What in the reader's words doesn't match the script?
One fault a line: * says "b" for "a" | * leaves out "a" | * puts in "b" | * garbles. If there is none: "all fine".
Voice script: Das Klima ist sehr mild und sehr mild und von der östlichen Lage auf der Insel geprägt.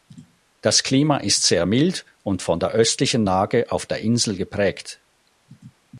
* leaves out "sehr mild und"